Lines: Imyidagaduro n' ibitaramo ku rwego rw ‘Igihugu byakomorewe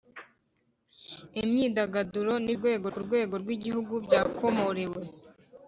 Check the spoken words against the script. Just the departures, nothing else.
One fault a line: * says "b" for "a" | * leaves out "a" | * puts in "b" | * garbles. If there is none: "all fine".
* says "rwego" for "ibitaramo"